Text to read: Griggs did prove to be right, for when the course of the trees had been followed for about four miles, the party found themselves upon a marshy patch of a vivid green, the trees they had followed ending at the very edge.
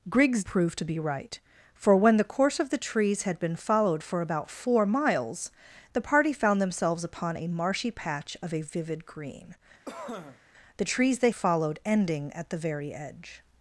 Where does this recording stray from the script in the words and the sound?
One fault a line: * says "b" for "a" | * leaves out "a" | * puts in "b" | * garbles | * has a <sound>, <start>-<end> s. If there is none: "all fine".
* leaves out "did"
* has a cough, 9.9-10.4 s
* leaves out "had"